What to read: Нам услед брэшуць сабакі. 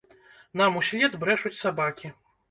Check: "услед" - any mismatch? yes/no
no